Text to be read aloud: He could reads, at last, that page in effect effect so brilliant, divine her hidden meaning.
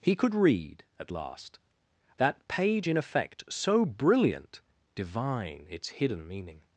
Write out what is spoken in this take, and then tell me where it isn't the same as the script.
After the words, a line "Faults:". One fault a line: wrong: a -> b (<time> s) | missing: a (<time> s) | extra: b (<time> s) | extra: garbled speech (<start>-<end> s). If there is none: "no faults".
He could read, at last, that page in effect so brilliant, divine its hidden meaning.
Faults:
wrong: reads -> read (0.3 s)
missing: effect (3.4 s)
wrong: her -> its (5.7 s)